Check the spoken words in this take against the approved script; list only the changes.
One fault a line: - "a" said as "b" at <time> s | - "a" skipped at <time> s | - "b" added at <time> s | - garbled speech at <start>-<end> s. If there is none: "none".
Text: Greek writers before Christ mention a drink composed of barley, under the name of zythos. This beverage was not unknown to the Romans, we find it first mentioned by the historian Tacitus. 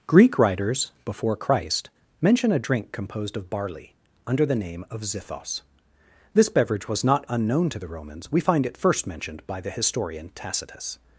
none